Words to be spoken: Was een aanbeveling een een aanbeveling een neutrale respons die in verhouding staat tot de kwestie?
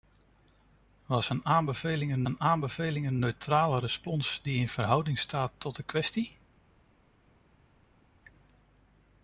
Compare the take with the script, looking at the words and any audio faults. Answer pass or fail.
pass